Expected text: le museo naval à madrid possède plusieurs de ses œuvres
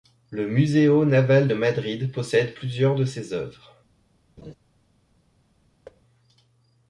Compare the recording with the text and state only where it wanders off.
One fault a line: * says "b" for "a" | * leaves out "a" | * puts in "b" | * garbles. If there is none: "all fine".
* says "de" for "à"